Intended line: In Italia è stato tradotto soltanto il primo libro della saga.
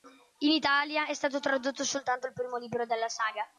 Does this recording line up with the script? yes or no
yes